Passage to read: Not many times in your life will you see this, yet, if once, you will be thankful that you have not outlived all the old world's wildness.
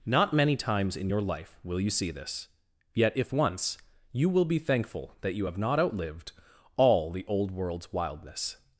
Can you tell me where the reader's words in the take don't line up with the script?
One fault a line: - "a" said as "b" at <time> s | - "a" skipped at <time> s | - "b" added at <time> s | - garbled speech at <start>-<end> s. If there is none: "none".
none